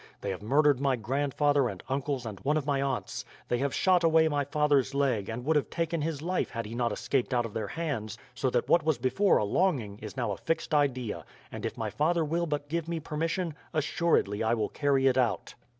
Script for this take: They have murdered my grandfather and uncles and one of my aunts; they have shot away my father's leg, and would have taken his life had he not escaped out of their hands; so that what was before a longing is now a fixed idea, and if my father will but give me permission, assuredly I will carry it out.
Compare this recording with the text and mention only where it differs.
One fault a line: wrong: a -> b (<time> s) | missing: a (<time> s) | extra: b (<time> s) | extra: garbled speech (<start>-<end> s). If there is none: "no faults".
no faults